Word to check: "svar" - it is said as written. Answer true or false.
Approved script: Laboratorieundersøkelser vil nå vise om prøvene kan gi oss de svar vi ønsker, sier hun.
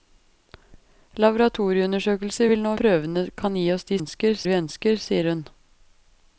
false